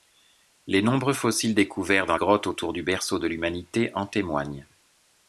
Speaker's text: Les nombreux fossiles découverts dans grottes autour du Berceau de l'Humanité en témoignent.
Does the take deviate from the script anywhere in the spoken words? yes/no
no